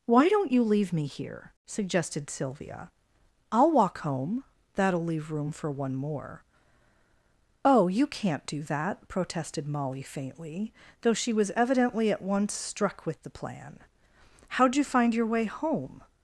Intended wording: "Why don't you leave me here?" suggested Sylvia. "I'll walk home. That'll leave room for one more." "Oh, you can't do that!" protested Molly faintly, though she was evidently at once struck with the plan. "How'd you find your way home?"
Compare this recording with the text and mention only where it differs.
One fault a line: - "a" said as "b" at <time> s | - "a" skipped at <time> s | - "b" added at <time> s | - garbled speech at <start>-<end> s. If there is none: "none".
none